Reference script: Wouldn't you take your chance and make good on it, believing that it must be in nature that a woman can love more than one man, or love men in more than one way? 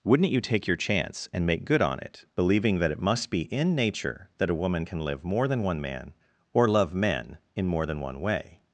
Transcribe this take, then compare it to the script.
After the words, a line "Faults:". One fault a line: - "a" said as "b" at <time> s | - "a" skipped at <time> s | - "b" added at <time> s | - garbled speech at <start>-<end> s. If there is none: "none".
Wouldn't you take your chance and make good on it, believing that it must be in nature that a woman can live more than one man, or love men in more than one way?
Faults:
- "love" said as "live" at 5.0 s